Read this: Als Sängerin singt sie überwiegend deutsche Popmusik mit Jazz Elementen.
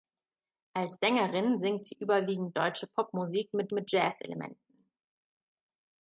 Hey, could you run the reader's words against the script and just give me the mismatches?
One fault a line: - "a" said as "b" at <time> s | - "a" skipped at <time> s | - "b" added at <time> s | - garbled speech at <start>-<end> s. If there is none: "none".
- "mit" added at 3.7 s